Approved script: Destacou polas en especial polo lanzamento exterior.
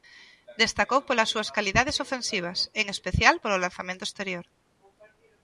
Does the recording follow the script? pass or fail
fail